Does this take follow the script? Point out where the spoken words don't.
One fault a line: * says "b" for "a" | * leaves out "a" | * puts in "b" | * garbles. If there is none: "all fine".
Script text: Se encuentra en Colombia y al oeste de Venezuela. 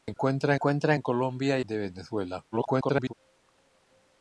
* puts in "encuentra"
* leaves out "al oeste"
* garbles